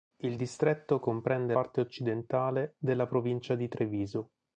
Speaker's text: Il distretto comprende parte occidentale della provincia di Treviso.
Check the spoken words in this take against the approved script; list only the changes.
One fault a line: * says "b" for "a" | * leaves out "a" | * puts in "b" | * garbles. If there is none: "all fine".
all fine